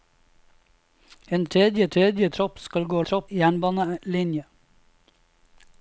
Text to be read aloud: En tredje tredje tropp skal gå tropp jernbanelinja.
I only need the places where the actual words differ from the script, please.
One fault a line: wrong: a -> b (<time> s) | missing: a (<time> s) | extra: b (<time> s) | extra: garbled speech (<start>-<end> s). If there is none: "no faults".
no faults